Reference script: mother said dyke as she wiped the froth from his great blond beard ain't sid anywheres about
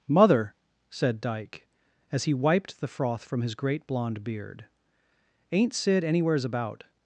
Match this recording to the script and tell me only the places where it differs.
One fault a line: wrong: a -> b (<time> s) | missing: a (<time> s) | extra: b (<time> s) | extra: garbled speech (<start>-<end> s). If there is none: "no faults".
wrong: she -> he (2.2 s)